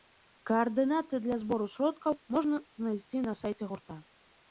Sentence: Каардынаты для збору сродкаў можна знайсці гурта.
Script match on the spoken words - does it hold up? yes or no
no